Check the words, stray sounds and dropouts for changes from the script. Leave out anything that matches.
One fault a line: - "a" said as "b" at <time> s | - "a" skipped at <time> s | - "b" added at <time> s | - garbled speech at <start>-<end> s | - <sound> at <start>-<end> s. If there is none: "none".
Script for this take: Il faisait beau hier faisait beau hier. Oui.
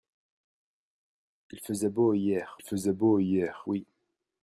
none